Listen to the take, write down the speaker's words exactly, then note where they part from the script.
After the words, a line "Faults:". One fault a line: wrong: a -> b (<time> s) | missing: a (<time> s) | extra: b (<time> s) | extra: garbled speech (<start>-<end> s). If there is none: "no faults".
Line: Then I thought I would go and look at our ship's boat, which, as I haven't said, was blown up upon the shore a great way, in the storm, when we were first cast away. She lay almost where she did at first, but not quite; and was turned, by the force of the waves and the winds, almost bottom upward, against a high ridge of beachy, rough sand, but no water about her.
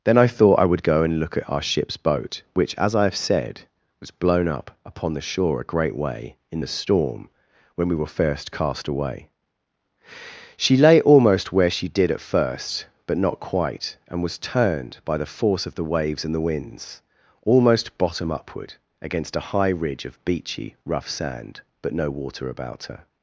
Then I thought I would go and look at our ship's boat, which, as I have said, was blown up upon the shore a great way, in the storm, when we were first cast away. She lay almost where she did at first, but not quite; and was turned, by the force of the waves and the winds, almost bottom upward, against a high ridge of beachy, rough sand, but no water about her.
Faults:
wrong: haven't -> have (3.0 s)